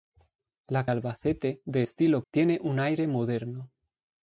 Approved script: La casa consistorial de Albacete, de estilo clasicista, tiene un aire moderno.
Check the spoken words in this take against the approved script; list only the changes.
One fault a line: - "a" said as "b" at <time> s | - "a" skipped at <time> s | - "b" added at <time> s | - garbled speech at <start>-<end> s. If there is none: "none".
- "casa consistorial de" skipped at 0.9 s
- "clasicista" skipped at 2.2 s